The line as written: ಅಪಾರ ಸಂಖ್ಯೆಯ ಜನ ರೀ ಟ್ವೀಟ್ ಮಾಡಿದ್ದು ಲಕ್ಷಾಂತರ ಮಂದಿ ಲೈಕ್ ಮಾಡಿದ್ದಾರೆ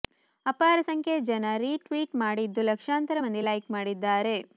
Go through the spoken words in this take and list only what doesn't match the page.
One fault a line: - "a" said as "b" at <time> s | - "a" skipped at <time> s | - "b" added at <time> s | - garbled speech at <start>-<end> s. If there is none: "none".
none